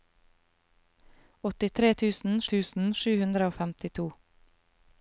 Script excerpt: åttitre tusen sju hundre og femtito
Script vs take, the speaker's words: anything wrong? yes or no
yes